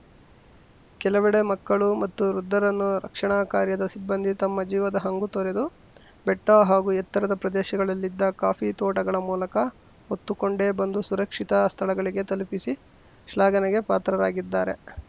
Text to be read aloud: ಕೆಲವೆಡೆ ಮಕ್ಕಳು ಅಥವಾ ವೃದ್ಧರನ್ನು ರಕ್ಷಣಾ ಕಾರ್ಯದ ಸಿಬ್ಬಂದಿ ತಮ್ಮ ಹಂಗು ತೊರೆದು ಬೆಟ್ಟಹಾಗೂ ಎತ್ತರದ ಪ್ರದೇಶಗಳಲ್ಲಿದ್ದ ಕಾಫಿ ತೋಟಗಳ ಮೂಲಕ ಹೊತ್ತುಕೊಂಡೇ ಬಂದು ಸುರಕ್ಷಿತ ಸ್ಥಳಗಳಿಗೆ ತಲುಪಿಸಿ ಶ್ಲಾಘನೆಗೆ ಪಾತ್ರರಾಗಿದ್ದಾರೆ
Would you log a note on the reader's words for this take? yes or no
yes